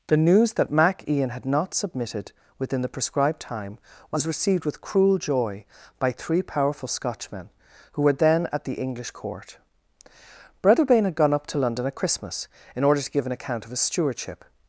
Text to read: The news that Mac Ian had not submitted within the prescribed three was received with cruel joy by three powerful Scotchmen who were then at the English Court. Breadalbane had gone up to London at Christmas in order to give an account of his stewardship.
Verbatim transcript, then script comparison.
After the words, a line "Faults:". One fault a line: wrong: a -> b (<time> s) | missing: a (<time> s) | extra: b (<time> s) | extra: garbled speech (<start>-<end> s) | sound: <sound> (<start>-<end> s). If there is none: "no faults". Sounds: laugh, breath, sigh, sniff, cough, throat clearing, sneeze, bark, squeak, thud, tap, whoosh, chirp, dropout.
The news that Mac Ian had not submitted within the prescribed time was received with cruel joy by three powerful Scotchmen who were then at the English Court. Breadalbane had gone up to London at Christmas in order to give an account of his stewardship.
Faults:
wrong: three -> time (3.4 s)